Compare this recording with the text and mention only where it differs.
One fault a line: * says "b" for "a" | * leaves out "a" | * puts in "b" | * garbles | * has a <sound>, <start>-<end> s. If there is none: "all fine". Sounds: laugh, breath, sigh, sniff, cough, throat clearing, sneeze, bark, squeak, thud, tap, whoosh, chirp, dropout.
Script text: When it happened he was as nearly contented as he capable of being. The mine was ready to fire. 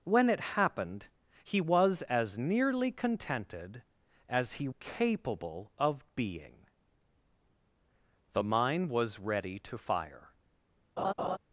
* has a laugh, 11.0-11.4 s